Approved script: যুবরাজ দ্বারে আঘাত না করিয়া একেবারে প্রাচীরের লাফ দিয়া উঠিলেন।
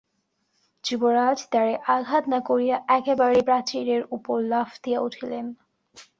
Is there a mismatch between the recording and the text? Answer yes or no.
yes